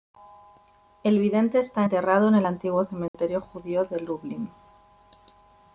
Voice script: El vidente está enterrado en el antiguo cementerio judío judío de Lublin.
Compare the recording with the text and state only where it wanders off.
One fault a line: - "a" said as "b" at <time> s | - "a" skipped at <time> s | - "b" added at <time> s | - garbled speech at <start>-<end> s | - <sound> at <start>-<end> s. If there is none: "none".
- dropout at 3.1-3.1 s
- "judío" skipped at 3.8 s